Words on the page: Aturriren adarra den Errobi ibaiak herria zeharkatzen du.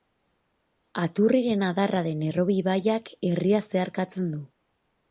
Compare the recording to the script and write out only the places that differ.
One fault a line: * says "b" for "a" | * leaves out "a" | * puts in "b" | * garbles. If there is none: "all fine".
all fine